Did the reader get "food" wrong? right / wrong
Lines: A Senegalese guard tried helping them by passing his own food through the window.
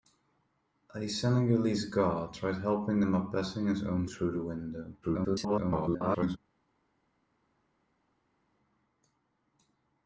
wrong